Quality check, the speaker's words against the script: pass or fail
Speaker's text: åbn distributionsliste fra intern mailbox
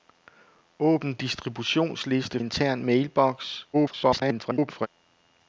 fail